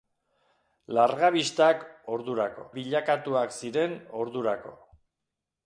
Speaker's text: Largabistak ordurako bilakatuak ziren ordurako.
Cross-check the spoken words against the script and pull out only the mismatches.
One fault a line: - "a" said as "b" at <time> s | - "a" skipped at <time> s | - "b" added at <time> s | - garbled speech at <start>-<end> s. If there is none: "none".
none